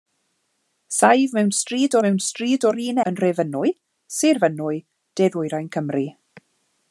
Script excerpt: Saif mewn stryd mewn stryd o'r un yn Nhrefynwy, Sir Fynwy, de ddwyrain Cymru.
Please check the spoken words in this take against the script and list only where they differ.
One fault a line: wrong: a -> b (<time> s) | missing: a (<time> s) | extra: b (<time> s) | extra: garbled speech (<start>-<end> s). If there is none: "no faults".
no faults